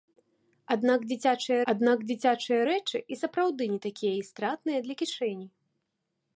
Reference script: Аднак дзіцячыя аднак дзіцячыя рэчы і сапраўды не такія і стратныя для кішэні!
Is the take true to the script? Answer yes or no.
yes